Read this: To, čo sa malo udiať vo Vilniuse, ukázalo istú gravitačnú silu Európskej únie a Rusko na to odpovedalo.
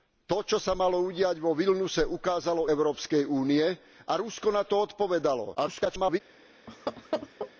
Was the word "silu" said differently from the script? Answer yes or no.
yes